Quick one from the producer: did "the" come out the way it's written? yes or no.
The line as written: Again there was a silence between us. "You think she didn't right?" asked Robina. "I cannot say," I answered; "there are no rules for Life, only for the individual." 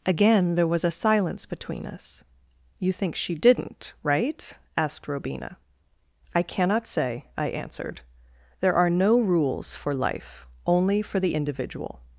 yes